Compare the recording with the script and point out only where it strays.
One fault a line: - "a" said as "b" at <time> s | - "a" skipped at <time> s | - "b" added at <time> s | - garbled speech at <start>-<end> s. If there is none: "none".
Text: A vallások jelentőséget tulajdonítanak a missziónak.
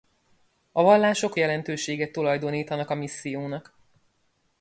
none